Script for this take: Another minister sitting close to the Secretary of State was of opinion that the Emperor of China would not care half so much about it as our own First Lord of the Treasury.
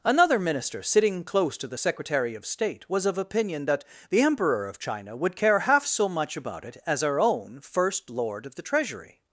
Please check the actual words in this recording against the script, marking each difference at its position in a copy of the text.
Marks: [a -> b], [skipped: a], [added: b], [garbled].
Another minister sitting close to the Secretary of State was of opinion that the Emperor of China would [skipped: not] care half so much about it as our own First Lord of the Treasury.